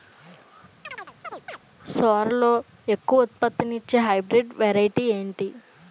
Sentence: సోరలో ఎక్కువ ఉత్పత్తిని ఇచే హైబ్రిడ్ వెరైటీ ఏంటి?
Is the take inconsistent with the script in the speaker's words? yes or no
no